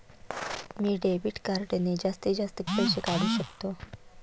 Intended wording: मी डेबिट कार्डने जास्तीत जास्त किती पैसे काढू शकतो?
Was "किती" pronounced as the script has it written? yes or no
no